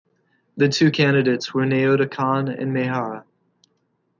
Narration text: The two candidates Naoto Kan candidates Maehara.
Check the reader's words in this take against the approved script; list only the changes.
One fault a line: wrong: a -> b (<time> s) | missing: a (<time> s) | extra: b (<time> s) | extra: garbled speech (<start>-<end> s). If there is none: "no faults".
extra: were (1.5 s)
wrong: candidates -> and (2.5 s)